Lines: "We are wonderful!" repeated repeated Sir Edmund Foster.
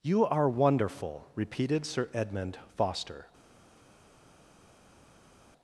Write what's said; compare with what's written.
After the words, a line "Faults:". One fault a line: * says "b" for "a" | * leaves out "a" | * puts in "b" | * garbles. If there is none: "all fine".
"You are wonderful!" repeated Sir Edmund Foster.
Faults:
* says "You" for "We"
* leaves out "repeated"